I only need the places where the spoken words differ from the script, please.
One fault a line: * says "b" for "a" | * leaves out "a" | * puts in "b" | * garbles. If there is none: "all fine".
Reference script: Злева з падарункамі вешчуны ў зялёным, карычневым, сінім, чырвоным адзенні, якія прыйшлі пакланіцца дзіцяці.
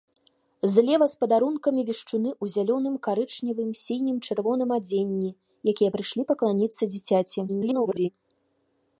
* garbles